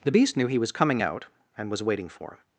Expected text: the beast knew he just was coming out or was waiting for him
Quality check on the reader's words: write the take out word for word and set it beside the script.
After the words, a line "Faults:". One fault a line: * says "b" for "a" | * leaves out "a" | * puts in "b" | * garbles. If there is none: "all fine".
the beast knew he was coming out and was waiting for him
Faults:
* leaves out "just"
* says "and" for "or"